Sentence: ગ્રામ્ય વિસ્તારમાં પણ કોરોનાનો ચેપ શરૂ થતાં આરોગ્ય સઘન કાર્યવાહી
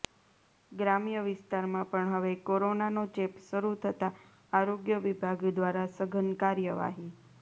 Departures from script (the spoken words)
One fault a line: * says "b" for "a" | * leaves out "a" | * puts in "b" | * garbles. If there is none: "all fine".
* puts in "હવે"
* puts in "વિભાગ દ્વારા"